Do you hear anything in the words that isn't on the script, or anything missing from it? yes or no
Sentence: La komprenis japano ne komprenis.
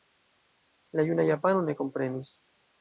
yes